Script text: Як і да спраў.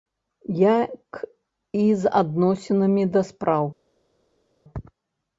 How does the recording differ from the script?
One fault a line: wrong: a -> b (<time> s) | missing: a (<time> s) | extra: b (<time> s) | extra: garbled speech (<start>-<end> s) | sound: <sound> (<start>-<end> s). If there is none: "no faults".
extra: з адносінамі (2.0 s)